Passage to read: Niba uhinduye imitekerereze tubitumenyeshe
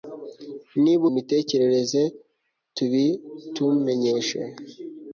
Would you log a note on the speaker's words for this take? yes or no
yes